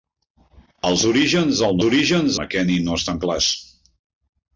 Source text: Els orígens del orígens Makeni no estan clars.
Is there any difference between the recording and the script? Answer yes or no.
no